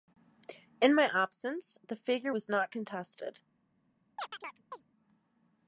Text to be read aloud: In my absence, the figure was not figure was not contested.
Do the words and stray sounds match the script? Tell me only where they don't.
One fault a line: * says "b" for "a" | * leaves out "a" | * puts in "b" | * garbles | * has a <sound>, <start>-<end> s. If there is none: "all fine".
* leaves out "figure was not"
* has a chirp, 4.2-4.8 s